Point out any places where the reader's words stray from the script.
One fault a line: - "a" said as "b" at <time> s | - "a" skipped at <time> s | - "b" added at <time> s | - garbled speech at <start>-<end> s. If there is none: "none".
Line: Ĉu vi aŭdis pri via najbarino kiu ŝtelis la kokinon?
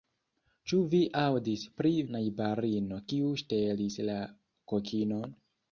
- "via" skipped at 1.9 s